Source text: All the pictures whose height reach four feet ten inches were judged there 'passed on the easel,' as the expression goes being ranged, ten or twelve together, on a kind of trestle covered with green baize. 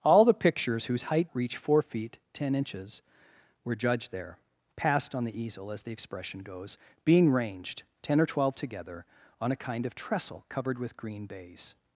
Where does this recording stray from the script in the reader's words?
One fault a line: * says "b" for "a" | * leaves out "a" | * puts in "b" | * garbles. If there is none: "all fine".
all fine